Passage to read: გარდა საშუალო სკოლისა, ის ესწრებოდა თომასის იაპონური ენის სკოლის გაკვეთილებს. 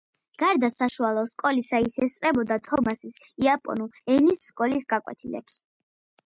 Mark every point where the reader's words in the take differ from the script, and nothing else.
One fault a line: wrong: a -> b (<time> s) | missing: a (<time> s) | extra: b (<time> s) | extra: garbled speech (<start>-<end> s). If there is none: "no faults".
no faults